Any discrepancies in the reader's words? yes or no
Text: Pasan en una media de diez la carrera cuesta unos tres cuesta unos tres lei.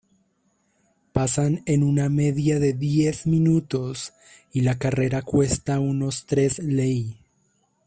yes